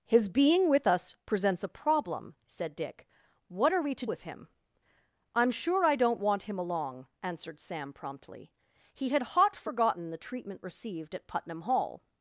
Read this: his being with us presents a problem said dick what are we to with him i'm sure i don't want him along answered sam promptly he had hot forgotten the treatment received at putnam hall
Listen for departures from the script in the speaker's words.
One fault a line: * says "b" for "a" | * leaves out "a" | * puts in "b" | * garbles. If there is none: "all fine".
all fine